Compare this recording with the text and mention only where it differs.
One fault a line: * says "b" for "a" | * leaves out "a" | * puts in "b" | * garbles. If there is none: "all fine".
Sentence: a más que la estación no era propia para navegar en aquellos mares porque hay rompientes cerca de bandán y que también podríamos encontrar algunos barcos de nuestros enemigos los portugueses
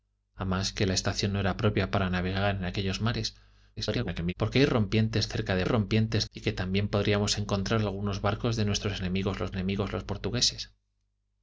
* garbles
* says "rompientes" for "bandán"
* puts in "enemigos los"